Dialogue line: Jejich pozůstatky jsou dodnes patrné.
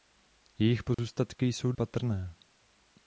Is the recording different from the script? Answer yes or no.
yes